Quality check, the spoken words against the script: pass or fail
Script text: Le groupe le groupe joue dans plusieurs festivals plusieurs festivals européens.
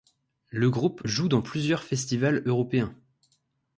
fail